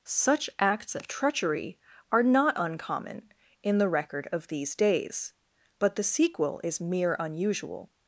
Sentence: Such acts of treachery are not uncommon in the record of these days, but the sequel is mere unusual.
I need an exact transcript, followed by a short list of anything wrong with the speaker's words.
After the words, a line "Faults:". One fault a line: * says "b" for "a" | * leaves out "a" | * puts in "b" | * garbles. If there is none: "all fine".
Such acts of treachery are not uncommon in the record of these days, but the sequel is mere unusual.
Faults:
all fine